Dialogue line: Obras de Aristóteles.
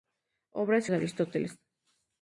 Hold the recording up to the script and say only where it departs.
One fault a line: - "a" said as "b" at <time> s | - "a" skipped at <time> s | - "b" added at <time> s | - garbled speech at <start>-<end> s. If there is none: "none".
none